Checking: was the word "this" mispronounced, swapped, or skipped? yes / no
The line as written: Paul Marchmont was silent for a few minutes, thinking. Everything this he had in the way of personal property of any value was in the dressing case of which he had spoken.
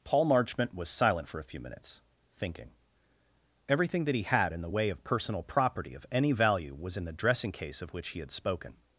yes